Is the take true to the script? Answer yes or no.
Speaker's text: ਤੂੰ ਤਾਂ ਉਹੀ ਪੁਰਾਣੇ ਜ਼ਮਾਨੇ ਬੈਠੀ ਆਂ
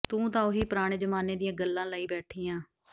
no